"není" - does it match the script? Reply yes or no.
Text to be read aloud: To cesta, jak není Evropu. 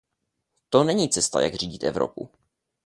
no